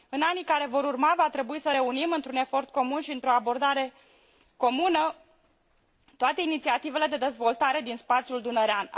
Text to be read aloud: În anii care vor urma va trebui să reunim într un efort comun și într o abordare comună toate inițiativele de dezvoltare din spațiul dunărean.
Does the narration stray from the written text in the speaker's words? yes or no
no